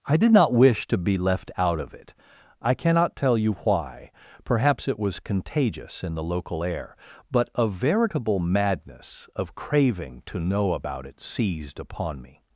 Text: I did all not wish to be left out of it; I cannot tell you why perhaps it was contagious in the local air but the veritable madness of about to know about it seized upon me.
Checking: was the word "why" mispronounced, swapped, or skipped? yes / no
no